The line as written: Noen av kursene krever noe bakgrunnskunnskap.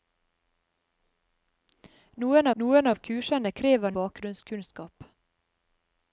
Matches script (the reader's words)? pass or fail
fail